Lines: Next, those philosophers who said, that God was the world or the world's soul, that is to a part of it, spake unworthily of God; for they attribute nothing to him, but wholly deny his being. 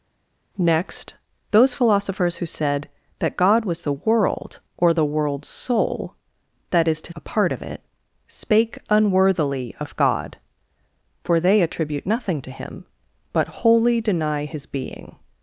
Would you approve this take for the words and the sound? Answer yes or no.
yes